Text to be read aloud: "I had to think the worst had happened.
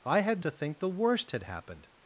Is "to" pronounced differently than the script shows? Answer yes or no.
no